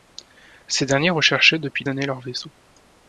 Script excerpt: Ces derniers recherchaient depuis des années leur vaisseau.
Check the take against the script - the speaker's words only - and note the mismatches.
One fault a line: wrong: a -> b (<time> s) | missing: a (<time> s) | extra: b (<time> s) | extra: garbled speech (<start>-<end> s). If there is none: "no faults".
missing: des (1.9 s)